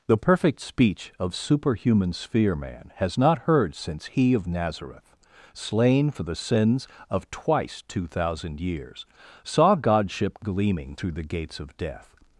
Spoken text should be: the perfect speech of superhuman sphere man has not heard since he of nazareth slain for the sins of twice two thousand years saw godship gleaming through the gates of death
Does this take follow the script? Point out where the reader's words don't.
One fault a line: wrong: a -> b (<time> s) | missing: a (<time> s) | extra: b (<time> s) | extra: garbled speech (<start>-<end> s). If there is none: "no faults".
no faults